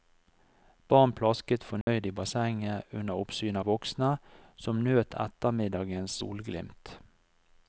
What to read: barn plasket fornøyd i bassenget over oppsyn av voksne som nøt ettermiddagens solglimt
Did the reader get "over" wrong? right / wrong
wrong